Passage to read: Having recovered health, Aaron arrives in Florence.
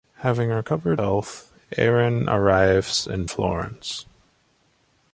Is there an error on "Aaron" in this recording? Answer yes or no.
no